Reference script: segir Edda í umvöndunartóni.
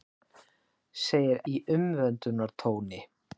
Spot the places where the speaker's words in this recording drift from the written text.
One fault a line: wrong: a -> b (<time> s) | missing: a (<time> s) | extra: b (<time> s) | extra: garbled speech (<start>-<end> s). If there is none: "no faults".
missing: Edda (1.4 s)